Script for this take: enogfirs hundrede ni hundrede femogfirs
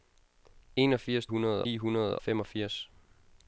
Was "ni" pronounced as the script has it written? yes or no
yes